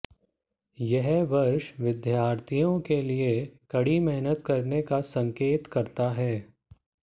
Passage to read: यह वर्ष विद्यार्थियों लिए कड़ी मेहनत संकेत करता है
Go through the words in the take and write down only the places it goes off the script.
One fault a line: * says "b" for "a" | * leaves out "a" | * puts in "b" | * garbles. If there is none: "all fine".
* puts in "के"
* puts in "करने का"